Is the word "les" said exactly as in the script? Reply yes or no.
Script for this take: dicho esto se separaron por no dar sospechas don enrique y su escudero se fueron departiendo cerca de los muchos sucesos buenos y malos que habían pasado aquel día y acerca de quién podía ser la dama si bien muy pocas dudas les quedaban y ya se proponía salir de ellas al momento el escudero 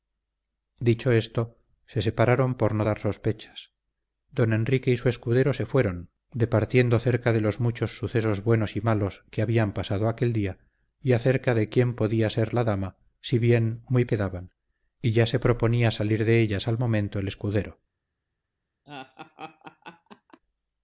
no